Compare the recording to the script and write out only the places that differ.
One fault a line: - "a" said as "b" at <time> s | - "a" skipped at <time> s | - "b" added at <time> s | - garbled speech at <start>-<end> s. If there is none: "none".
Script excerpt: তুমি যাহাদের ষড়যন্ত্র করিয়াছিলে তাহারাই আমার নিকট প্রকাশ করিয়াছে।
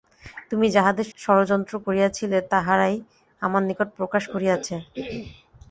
none